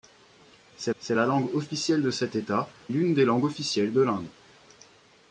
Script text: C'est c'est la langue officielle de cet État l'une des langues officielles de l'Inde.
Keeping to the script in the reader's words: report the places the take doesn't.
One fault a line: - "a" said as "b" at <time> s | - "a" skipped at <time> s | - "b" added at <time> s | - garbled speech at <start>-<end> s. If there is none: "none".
none